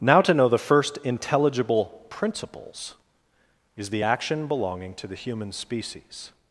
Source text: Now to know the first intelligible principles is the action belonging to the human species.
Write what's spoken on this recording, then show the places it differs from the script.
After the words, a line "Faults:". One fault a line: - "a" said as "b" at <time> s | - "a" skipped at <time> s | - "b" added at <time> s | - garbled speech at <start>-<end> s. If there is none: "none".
Now to know the first intelligible principles is the action belonging to the human species.
Faults:
none